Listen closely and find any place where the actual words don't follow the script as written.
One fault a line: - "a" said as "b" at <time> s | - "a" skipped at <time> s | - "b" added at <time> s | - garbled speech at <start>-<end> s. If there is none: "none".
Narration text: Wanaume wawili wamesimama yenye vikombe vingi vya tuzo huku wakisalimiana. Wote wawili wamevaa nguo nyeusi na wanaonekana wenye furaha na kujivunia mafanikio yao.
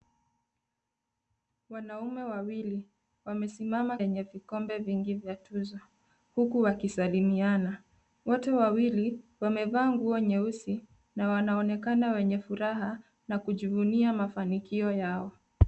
none